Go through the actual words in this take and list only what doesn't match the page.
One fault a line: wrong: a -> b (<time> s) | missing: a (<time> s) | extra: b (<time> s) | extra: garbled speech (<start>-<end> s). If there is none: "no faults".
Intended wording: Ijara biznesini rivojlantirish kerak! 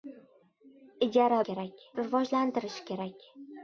wrong: biznesini -> kerak (1.5 s)